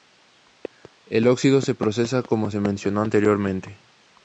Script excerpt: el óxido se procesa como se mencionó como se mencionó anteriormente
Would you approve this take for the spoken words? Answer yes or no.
no